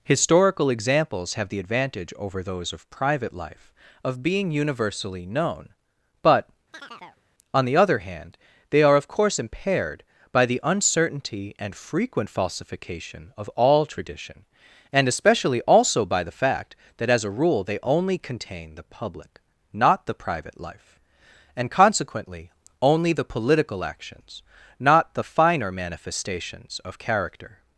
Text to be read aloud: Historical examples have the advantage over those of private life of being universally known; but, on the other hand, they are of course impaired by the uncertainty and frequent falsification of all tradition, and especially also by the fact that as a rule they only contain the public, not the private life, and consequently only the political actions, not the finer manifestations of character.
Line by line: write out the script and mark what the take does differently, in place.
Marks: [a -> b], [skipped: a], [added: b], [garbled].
Historical examples have the advantage over those of private life of being universally known; but, on the other hand, they are of course impaired by the uncertainty and frequent falsification of all tradition, and especially also by the fact that as a rule they only contain the public, not the private life, and consequently only the political actions, not the finer manifestations of character.